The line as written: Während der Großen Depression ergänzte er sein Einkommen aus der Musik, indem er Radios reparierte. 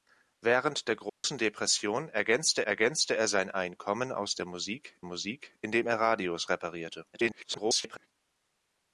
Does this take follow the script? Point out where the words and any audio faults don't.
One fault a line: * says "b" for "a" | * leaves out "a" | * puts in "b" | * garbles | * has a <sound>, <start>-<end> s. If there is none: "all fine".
* has a dropout, 1.1-1.2 s
* puts in "ergänzte"
* puts in "Musik"
* garbles